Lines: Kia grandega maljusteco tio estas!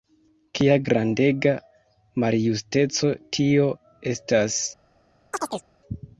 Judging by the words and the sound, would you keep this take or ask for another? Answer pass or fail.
fail